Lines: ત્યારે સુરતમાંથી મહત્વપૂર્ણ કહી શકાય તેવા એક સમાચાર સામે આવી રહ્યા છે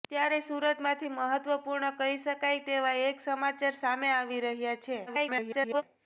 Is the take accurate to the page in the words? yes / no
no